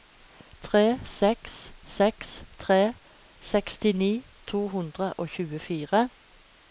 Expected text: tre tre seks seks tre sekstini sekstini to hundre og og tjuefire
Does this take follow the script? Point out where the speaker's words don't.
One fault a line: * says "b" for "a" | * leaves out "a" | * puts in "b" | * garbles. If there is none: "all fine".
* leaves out "tre"
* leaves out "sekstini"
* leaves out "og"